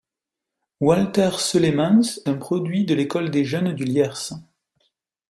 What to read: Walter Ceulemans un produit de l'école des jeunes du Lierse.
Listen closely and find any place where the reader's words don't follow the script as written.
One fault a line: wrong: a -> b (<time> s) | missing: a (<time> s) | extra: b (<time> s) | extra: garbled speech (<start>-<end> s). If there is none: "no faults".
no faults